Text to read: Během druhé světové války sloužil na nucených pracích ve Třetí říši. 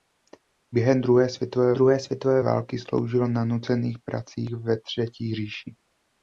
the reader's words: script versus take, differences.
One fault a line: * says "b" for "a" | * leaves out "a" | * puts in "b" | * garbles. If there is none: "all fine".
* puts in "druhé světové"